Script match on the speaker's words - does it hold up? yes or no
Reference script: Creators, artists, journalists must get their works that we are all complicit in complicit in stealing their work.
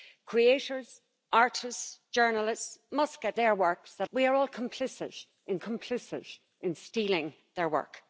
yes